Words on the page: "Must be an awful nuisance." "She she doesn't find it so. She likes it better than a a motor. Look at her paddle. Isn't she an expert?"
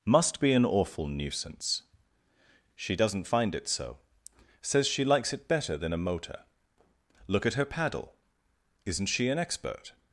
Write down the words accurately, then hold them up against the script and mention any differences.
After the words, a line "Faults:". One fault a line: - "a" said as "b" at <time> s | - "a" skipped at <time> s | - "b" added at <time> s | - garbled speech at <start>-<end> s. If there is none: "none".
"Must be an awful nuisance." "She doesn't find it so. Says she likes it better than a motor. Look at her paddle. Isn't she an expert?"
Faults:
- "she" skipped at 2.9 s
- "Says" added at 4.6 s
- "a" skipped at 6.0 s